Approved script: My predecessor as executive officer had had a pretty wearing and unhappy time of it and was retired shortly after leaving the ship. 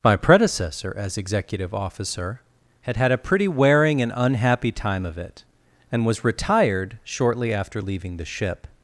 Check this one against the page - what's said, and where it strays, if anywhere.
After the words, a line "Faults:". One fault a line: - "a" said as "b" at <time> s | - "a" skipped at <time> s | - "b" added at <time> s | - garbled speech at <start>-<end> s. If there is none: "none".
My predecessor as executive officer had had a pretty wearing and unhappy time of it and was retired shortly after leaving the ship.
Faults:
none